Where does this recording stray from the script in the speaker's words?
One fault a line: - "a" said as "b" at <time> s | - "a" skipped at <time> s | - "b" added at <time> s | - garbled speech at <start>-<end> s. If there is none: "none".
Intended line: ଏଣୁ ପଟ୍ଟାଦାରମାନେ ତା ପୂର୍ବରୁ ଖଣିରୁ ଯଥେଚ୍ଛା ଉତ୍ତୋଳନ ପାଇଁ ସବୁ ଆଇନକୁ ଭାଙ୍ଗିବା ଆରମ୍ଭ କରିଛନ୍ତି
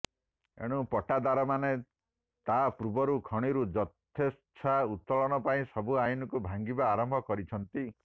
none